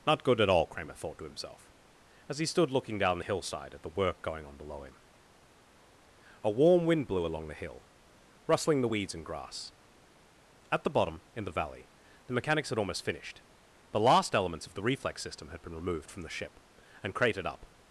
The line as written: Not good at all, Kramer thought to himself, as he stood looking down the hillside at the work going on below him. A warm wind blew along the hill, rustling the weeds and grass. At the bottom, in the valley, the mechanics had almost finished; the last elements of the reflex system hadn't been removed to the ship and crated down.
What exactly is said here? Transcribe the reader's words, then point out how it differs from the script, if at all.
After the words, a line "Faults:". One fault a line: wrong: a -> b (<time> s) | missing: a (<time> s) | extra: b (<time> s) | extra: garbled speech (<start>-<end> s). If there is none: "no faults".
Not good at all, Kramer thought to himself, as he stood looking down the hillside at the work going on below him. A warm wind blew along the hill, rustling the weeds and grass. At the bottom, in the valley, the mechanics had almost finished; the last elements of the reflex system had been removed from the ship and crated up.
Faults:
wrong: hadn't -> had (15.5 s)
wrong: to -> from (16.1 s)
wrong: down -> up (17.5 s)